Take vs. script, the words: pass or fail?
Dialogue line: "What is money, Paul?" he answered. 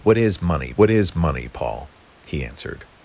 fail